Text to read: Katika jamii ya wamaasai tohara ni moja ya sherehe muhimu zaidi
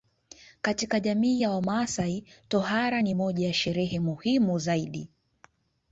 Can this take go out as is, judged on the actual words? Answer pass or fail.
pass